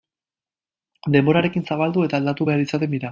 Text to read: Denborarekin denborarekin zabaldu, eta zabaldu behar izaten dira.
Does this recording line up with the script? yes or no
no